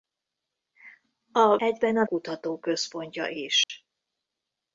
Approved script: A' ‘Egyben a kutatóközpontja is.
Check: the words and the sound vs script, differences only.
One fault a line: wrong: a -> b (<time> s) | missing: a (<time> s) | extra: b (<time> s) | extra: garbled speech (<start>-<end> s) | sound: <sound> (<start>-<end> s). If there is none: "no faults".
sound: dropout (3.6-3.7 s)